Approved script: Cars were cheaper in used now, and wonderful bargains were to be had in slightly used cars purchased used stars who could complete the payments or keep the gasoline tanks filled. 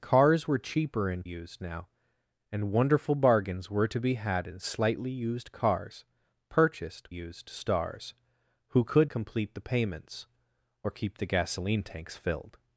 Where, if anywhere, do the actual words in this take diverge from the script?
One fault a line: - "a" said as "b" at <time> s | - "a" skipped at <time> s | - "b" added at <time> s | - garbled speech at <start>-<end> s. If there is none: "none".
none